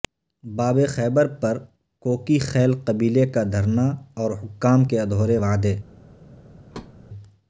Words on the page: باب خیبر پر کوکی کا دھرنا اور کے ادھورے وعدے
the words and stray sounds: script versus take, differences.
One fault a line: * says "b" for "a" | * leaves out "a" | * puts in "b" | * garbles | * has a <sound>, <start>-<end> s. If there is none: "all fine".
* puts in "خیل قبیلے"
* puts in "حکام"
* has a thud, 6.7-7.0 s